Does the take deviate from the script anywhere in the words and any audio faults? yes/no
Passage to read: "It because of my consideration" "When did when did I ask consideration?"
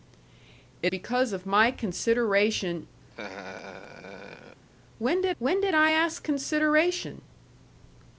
yes